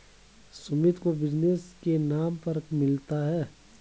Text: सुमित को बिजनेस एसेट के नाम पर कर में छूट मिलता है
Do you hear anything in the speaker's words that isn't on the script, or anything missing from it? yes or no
yes